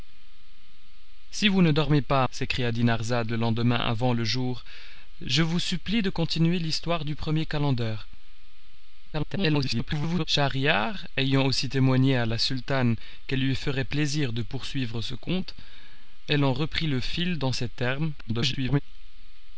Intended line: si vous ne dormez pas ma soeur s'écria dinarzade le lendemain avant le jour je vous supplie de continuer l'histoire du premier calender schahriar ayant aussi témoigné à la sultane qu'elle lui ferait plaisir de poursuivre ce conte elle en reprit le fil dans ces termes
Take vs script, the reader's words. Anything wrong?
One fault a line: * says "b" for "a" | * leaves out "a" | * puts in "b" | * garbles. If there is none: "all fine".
* leaves out "ma soeur"
* garbles
* garbles